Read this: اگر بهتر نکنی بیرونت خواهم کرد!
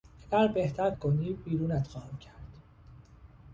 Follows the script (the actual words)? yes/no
yes